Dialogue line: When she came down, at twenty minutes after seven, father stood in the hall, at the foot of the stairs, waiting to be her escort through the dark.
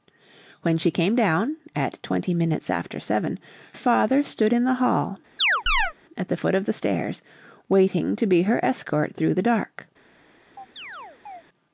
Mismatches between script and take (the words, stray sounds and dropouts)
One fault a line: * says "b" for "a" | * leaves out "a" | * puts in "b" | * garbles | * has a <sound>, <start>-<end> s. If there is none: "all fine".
* has a chirp, 5.4-5.9 s
* has a chirp, 10.6-11.4 s